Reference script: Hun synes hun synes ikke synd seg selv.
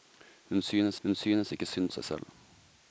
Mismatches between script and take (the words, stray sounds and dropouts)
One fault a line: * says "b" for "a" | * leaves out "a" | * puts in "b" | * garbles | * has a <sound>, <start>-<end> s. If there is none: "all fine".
all fine